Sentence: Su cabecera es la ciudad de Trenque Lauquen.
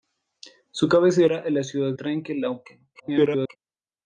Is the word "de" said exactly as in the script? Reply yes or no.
no